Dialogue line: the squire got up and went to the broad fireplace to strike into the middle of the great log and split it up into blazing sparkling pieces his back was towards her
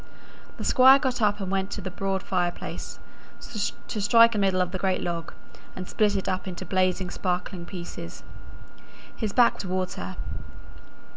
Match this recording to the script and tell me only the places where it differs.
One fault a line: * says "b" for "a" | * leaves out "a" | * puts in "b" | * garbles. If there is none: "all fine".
* leaves out "into"
* leaves out "was"